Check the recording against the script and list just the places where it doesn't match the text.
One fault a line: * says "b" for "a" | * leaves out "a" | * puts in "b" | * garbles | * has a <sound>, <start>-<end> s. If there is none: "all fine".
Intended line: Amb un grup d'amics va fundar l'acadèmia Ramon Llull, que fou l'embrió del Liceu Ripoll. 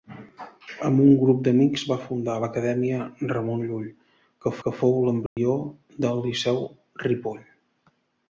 * puts in "que"
* has a dropout, 5.3-5.4 s